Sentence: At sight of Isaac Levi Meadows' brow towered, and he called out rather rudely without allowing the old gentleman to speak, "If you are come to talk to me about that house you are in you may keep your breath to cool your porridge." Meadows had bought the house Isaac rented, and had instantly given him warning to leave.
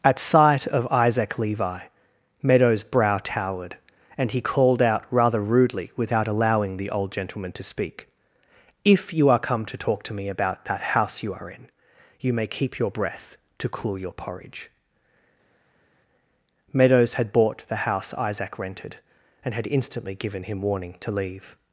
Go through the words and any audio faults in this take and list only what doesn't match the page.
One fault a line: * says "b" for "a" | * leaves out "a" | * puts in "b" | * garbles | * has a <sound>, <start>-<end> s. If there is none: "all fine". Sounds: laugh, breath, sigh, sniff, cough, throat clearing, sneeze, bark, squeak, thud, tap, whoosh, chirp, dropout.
all fine